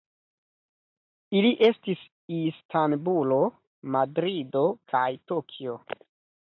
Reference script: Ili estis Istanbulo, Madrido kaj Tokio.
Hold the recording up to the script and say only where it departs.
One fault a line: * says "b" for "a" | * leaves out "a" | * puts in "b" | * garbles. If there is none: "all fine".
all fine